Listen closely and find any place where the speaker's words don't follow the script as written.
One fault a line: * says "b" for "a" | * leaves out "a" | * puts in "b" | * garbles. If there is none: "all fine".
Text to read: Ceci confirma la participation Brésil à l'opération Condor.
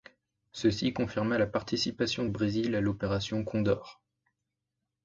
all fine